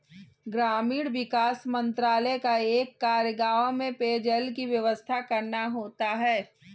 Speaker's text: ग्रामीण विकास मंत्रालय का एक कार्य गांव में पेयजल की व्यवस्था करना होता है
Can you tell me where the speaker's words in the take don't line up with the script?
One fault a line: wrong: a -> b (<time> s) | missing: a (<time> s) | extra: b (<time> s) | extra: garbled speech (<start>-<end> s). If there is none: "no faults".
no faults